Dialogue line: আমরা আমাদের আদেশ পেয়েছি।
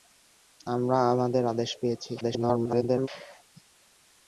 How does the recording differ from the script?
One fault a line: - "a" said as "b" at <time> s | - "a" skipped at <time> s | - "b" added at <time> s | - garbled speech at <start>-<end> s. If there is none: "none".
- garbled speech at 2.2-3.1 s